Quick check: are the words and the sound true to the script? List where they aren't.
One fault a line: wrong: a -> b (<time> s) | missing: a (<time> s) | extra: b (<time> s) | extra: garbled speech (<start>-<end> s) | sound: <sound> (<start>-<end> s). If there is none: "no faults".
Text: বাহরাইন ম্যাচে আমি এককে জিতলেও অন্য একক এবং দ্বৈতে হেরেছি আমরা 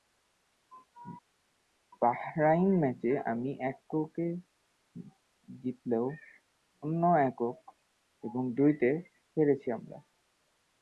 no faults